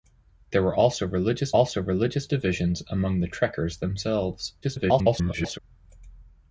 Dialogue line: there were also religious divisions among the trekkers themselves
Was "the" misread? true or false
false